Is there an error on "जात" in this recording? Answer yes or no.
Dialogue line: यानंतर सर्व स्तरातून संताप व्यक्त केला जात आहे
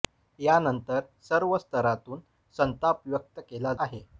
yes